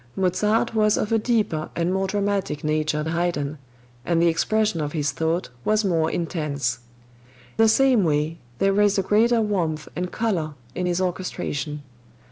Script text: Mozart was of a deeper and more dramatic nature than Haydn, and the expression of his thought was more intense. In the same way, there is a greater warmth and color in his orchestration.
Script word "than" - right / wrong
wrong